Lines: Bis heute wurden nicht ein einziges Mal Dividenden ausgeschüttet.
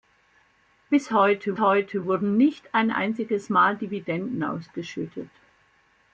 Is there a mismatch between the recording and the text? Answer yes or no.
yes